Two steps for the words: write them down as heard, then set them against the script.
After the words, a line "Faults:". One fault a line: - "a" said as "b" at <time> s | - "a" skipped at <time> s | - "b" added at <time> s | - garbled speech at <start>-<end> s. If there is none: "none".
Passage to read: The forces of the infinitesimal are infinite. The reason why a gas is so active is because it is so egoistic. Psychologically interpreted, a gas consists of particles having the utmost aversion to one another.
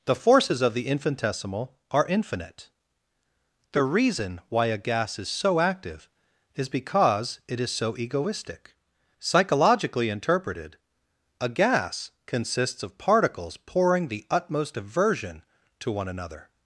The forces of the infinitesimal are infinite. The reason why a gas is so active is because it is so egoistic. Psychologically interpreted, a gas consists of particles pouring the utmost aversion to one another.
Faults:
- "having" said as "pouring" at 13.6 s